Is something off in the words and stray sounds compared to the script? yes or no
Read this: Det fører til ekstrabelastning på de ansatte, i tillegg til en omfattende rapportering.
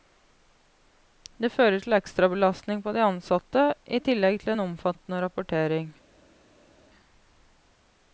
no